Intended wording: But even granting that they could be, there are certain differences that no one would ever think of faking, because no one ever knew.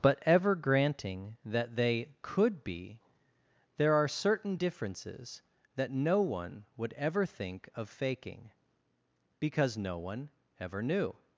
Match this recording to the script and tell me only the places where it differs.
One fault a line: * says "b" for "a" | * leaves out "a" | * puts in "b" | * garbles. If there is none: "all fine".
* says "ever" for "even"